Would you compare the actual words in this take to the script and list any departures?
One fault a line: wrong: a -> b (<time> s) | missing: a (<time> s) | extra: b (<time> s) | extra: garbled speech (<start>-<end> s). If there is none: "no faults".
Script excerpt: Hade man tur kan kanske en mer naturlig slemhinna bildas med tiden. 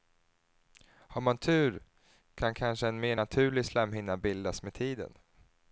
wrong: Hade -> Har (0.8 s)